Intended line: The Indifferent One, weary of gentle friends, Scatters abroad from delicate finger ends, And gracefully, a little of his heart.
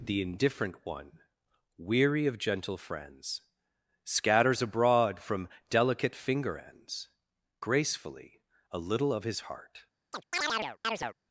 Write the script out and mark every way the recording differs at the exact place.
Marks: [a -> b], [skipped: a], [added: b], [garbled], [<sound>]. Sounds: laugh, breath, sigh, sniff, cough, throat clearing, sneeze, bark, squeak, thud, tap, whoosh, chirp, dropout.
The Indifferent One, weary of gentle friends, Scatters abroad from delicate finger ends, [skipped: And] gracefully, a little of his heart. [chirp]